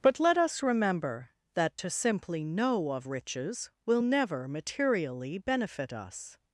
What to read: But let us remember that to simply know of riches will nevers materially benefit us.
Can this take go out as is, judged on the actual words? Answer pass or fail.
fail